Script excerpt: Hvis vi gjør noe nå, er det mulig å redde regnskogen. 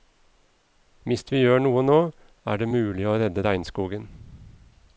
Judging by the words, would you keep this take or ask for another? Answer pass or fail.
pass